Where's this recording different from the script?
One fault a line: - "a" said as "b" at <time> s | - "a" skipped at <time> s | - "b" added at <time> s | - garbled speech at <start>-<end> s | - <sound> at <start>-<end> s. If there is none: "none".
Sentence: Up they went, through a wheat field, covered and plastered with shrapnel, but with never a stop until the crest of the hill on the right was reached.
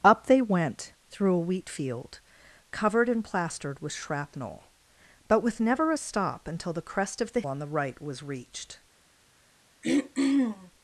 - "hill" skipped at 7.4 s
- throat clearing at 9.8-10.7 s